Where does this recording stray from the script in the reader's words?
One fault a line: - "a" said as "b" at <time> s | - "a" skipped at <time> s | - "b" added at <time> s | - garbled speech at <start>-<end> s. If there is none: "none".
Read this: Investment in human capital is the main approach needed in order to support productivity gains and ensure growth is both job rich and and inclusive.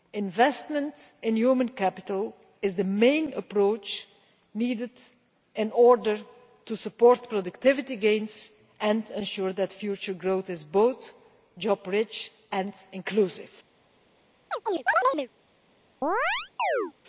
- "that future" added at 9.5 s
- "and" skipped at 12.7 s